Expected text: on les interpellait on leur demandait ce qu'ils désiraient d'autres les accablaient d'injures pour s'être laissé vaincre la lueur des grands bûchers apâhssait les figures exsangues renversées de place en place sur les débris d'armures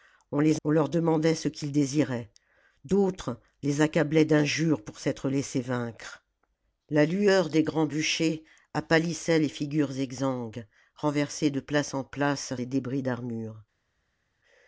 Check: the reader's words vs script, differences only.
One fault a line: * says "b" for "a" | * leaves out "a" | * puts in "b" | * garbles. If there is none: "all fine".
* leaves out "interpellait"
* leaves out "sur"